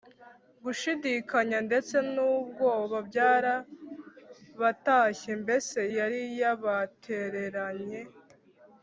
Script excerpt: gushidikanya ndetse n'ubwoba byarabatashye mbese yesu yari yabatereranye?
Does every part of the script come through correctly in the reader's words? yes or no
no